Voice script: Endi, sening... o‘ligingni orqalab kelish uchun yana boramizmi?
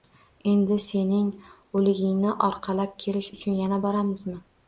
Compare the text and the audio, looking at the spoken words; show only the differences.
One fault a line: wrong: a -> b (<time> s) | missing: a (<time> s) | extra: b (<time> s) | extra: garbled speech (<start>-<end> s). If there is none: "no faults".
no faults